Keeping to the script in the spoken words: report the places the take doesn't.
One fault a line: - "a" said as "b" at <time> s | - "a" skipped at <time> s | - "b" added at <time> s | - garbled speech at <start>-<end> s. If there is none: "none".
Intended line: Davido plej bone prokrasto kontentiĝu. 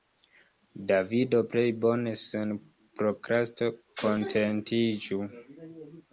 - "sen" added at 2.2 s